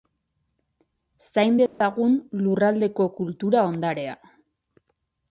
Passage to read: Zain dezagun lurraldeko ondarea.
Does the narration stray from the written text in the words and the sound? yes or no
yes